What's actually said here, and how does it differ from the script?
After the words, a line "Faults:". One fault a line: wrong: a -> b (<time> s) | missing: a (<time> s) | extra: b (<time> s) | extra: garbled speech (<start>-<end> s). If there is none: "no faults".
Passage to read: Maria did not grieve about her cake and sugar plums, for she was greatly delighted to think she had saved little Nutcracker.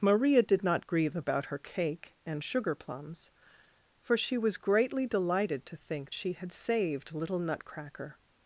Maria did not grieve about her cake and sugar plums, for she was greatly delighted to think she had saved little Nutcracker.
Faults:
no faults